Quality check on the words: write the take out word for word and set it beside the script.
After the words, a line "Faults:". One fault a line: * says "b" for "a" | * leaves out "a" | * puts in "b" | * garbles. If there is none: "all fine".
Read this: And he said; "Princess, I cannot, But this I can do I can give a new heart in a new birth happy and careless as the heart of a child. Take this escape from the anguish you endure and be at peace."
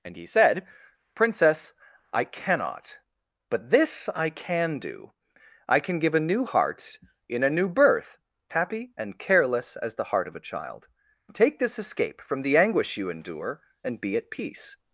And he said; "Princess, I cannot, But this I can do I can give a new heart in a new birth happy and careless as the heart of a child. Take this escape from the anguish you endure and be at peace."
Faults:
all fine